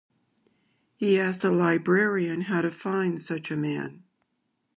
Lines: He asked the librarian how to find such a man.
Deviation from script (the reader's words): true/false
false